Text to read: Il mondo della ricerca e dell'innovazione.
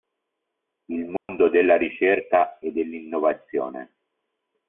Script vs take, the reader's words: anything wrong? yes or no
no